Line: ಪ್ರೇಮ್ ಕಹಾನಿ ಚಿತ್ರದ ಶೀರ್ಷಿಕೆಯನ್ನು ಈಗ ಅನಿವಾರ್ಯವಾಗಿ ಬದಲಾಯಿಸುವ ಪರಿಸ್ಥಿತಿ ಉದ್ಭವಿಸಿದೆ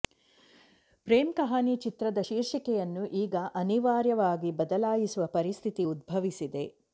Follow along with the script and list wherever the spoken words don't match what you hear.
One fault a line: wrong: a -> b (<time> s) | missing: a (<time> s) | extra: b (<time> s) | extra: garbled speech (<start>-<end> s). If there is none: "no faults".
no faults